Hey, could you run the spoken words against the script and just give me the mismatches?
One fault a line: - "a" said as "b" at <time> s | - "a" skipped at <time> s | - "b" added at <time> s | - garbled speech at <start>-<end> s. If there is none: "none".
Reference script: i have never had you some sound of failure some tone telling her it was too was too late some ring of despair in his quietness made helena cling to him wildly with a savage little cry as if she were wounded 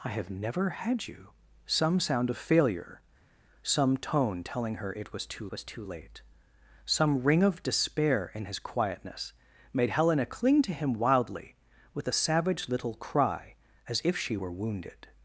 none